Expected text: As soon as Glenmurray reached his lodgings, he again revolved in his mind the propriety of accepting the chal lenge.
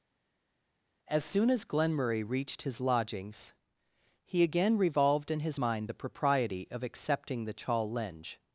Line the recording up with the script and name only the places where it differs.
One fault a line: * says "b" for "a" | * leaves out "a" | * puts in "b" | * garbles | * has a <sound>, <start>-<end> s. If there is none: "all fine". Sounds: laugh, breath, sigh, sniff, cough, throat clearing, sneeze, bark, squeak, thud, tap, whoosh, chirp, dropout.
all fine